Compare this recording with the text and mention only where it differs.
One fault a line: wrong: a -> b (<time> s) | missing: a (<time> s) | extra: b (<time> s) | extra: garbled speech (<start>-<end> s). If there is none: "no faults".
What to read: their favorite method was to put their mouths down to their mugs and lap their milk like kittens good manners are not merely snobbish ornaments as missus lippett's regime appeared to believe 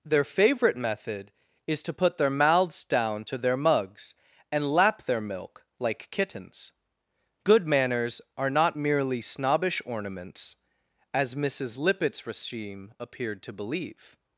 wrong: was -> is (1.7 s)